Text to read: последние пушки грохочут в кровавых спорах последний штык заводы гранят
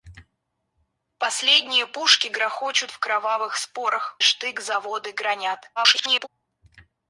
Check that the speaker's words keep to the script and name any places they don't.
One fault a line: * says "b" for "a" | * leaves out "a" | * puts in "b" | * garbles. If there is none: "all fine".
* leaves out "последний"
* garbles